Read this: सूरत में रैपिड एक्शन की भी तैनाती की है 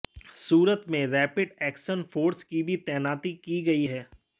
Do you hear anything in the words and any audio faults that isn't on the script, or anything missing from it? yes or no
yes